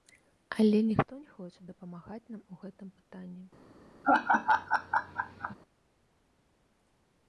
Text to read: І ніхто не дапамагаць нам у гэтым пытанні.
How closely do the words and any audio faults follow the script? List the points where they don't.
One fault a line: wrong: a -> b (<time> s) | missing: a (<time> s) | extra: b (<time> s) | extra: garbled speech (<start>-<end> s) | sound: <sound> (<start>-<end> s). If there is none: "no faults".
wrong: І -> Але (0.6 s)
extra: хоча (1.4 s)
sound: laugh (4.0-5.6 s)